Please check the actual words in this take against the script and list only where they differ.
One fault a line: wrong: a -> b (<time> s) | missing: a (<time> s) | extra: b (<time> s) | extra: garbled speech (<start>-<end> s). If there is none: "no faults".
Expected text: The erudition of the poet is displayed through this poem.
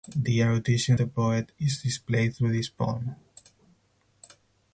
missing: of (1.0 s)